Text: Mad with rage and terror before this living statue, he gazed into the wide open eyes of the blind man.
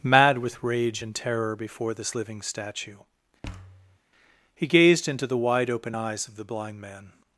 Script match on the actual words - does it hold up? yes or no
yes